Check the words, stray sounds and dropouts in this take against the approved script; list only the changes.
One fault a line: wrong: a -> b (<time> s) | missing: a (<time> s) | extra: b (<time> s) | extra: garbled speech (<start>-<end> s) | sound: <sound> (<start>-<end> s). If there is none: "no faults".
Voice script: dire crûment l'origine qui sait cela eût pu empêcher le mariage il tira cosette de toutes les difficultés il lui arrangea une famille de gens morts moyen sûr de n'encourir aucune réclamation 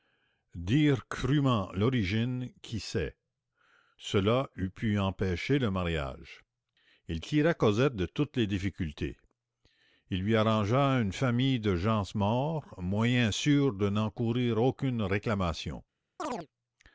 sound: chirp (16.2-16.5 s)